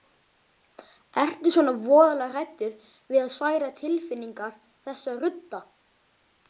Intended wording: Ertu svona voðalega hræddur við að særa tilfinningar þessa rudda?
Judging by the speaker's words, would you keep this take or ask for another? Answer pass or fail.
pass